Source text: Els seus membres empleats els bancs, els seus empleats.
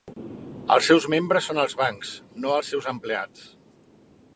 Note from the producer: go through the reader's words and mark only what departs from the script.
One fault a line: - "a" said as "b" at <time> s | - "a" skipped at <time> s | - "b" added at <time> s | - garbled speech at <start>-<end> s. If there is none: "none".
- "empleats" said as "són" at 1.5 s
- "no" added at 2.5 s